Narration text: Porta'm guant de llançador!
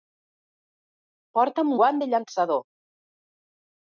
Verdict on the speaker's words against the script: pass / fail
pass